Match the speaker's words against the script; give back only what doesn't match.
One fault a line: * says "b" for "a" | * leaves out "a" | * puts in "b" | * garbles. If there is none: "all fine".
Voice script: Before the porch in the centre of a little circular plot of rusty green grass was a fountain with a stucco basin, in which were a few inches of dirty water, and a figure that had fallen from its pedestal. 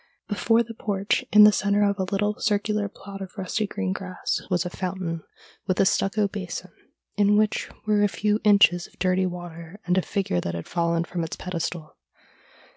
all fine